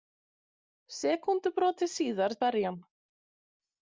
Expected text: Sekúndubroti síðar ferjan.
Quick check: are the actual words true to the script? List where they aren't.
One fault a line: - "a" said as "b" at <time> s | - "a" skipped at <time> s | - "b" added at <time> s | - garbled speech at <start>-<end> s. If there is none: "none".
none